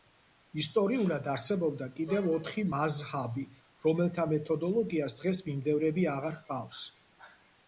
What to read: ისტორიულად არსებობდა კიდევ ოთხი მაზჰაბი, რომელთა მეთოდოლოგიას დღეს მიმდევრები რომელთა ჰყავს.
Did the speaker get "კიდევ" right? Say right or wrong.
right